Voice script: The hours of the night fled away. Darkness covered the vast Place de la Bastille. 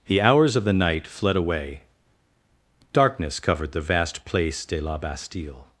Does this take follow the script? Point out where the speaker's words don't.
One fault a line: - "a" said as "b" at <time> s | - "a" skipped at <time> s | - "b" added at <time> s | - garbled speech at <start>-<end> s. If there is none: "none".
none